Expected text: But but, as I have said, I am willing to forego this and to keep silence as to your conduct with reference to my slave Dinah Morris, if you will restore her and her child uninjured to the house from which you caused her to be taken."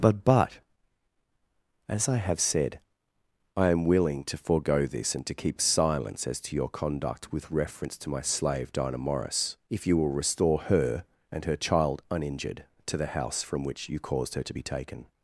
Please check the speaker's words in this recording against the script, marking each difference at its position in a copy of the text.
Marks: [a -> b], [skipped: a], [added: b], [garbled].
But but, as I have said, I am willing to forego this and to keep silence as to your conduct with reference to my slave Dinah Morris, if you will restore her and her child uninjured to the house from which you caused her to be taken."